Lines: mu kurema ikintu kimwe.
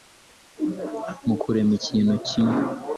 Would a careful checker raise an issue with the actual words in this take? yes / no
no